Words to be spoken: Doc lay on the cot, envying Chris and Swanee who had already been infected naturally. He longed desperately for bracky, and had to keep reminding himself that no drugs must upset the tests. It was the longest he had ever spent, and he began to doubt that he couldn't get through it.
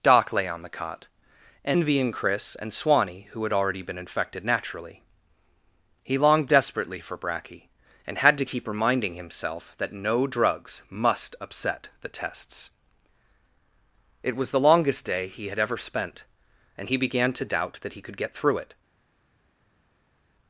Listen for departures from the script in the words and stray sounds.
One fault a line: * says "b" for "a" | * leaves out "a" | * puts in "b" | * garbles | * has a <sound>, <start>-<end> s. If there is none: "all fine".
* puts in "day"
* says "could" for "couldn't"